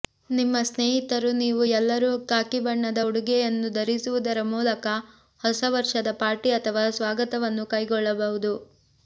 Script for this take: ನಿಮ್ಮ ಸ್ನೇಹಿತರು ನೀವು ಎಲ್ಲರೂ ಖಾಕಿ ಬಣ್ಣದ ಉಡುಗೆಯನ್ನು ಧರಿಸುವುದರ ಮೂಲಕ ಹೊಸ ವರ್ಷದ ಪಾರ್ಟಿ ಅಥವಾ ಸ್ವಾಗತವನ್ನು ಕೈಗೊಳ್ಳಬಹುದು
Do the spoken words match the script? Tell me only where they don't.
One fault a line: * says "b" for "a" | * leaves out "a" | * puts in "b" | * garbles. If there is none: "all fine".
all fine